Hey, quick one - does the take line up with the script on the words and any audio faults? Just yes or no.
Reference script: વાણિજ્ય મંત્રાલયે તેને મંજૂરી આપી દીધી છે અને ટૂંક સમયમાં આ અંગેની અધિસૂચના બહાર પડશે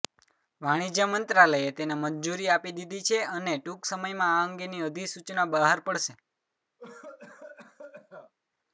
no